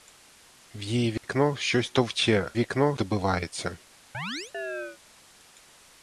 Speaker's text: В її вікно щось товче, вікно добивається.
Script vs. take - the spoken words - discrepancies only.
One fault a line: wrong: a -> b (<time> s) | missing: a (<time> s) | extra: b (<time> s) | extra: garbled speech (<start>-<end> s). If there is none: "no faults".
no faults